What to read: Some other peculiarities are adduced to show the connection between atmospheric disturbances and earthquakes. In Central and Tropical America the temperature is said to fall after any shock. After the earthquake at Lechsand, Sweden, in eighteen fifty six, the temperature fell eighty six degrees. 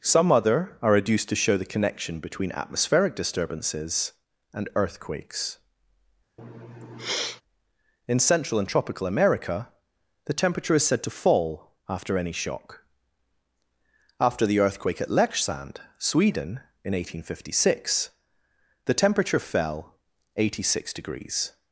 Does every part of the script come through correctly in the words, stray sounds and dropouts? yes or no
no